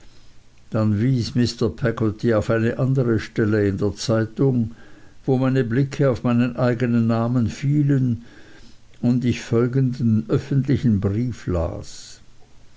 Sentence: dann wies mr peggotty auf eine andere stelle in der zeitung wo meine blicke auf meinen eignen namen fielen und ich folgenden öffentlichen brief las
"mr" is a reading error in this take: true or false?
false